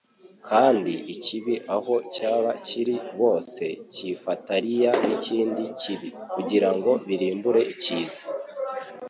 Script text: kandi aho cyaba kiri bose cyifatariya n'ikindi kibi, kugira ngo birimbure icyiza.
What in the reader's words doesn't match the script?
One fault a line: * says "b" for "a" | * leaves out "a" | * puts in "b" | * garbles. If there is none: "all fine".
* puts in "ikibi"